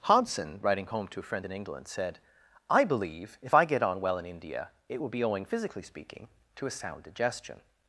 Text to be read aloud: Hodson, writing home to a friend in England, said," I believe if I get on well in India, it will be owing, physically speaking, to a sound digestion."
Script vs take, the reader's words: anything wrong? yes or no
no